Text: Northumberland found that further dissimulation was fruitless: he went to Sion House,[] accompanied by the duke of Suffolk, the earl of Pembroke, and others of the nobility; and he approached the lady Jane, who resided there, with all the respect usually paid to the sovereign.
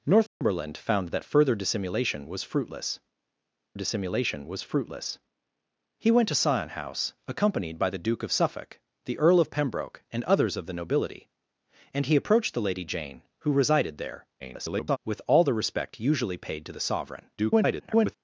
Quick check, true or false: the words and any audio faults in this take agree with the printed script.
false